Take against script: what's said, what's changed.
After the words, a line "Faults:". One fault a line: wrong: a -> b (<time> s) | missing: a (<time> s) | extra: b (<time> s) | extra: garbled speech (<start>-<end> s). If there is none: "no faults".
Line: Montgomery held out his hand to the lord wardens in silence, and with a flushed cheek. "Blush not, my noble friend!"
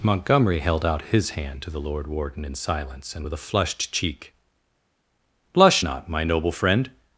Montgomery held out his hand to the lord warden in silence, and with a flushed cheek. "Blush not, my noble friend!"
Faults:
wrong: wardens -> warden (2.1 s)